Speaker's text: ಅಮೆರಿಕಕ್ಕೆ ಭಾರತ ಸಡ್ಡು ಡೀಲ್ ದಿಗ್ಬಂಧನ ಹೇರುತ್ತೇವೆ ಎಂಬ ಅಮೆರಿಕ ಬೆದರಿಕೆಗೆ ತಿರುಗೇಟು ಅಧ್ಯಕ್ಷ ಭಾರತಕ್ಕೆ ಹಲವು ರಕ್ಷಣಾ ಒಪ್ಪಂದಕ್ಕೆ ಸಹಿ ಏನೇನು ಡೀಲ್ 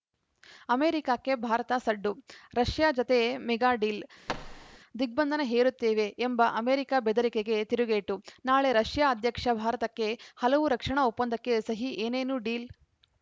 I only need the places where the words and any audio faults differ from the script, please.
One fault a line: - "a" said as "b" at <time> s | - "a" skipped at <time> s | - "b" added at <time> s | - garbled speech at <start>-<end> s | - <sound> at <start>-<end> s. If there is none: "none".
- "ರಷ್ಯಾ ಜತೆ ಮೆಗಾ" added at 2.5 s
- thud at 4.3-4.8 s
- "ನಾಳೆ ರಷ್ಯಾ" added at 8.4 s